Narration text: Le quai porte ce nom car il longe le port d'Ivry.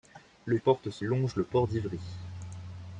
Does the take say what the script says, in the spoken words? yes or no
no